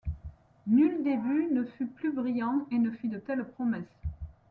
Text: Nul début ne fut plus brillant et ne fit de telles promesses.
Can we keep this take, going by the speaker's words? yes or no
yes